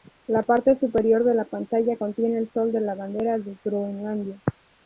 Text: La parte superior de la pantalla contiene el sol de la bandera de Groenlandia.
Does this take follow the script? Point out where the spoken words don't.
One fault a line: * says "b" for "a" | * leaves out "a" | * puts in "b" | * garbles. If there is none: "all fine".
all fine